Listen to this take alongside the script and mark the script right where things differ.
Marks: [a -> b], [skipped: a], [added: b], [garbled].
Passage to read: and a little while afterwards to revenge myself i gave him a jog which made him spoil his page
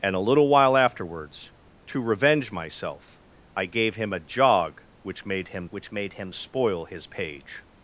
and a little while afterwards to revenge myself i gave him a jog which made him [added: which made him] spoil his page